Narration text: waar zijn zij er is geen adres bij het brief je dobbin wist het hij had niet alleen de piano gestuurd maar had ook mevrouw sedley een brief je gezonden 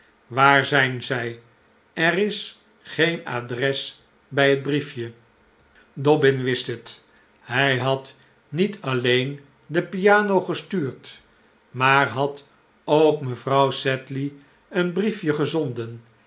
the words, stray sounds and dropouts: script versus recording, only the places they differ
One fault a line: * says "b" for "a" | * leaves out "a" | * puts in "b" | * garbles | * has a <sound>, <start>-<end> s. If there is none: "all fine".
all fine